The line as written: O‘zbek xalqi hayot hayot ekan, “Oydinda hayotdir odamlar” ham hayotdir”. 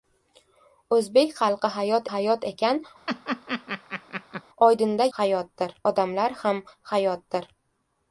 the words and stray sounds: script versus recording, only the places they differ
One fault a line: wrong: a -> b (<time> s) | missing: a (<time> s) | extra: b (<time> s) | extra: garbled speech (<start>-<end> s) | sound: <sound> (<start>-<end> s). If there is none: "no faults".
sound: laugh (3.1-4.4 s)